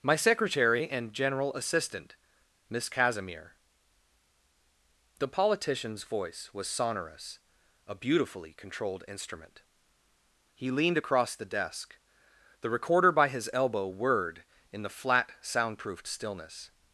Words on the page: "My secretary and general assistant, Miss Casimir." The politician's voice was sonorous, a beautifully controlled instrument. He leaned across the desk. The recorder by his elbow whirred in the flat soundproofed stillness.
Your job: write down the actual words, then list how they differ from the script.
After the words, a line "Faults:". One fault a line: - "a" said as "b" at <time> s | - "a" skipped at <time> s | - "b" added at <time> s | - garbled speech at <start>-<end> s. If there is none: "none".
"My secretary and general assistant, Miss Casimir." The politician's voice was sonorous, a beautifully controlled instrument. He leaned across the desk. The recorder by his elbow whirred in the flat soundproofed stillness.
Faults:
none